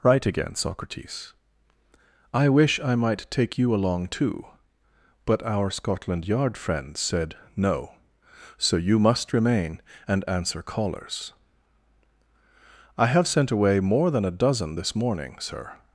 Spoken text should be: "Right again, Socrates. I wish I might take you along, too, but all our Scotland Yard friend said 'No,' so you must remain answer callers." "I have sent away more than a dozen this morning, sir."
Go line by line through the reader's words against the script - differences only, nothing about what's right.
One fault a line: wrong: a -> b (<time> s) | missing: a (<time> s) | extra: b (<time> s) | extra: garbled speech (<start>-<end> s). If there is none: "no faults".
missing: all (5.4 s)
extra: and (10.1 s)